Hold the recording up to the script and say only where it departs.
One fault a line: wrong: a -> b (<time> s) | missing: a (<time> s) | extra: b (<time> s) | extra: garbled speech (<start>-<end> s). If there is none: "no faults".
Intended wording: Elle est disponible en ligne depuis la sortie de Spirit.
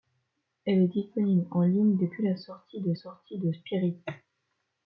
extra: sortie de (2.9 s)